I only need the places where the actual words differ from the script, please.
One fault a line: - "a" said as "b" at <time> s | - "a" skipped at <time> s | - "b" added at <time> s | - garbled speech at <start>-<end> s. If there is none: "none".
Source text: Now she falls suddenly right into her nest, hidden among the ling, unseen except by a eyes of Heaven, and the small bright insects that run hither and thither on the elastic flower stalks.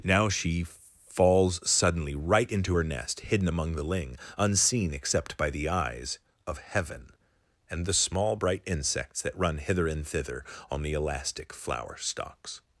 - "a" said as "the" at 5.5 s